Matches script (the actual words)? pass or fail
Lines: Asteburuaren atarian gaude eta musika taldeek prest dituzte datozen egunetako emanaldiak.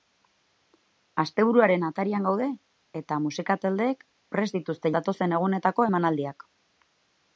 pass